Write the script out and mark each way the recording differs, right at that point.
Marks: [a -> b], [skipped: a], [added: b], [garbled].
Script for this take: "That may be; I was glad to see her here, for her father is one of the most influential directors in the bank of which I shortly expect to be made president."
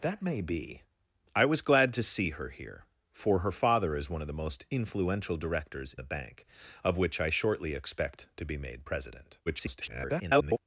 "That may be; I was glad to see her here, for her father is one of the most influential directors [skipped: in] the bank of which I shortly expect to be made president." [garbled]